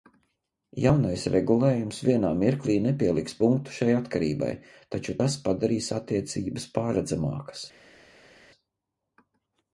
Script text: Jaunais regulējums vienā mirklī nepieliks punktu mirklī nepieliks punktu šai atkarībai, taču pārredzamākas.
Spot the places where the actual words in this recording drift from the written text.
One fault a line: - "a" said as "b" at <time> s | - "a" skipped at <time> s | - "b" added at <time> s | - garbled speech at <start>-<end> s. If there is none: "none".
- "mirklī nepieliks punktu šai atkarībai taču" said as "šai atkarībai taču tas padarīs attiecības" at 3.8 s